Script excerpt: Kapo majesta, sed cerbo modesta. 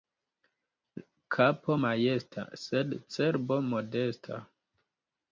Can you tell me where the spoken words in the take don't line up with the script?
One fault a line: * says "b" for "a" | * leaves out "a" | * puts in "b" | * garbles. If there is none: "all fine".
all fine